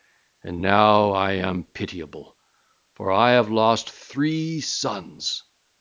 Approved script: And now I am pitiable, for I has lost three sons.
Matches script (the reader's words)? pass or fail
fail